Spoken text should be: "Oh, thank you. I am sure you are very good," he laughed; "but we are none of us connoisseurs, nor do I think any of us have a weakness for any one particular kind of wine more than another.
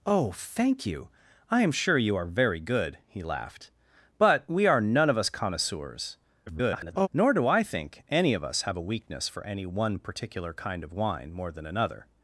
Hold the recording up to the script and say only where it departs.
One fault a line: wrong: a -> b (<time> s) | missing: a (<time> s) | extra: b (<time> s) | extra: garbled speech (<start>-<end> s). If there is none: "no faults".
extra: garbled speech (6.5-7.1 s)